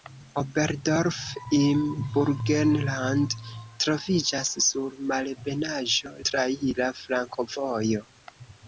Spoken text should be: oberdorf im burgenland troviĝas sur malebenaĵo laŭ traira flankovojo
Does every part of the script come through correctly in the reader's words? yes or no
no